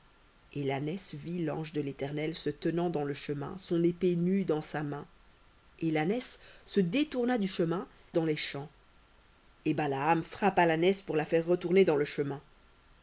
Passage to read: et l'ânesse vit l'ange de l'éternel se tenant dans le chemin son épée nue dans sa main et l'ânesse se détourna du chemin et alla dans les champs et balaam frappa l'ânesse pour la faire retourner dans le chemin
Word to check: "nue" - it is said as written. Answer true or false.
true